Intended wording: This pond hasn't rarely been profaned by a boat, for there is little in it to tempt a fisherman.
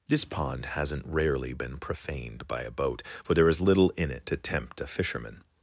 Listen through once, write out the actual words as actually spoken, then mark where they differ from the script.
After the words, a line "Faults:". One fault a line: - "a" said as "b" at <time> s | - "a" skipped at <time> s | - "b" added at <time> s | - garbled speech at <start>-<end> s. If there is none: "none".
This pond hasn't rarely been profaned by a boat, for there is little in it to tempt a fisherman.
Faults:
none